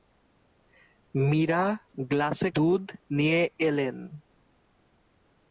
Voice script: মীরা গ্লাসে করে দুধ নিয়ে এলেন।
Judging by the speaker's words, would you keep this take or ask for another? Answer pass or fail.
fail